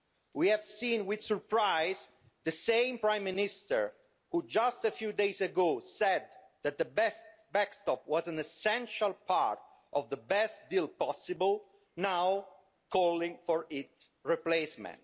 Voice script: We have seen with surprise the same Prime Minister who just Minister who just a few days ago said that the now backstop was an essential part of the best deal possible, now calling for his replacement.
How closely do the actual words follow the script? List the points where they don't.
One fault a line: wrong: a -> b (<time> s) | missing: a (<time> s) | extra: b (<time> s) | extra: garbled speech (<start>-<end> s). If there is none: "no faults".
missing: Minister who just (4.8 s)
wrong: now -> best (6.8 s)
wrong: his -> its (13.7 s)